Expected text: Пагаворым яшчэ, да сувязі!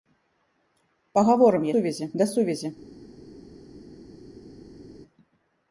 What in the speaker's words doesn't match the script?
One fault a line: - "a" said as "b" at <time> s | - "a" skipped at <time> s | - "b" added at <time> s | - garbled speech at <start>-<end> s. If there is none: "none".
- "яшчэ" said as "сувязі" at 1.7 s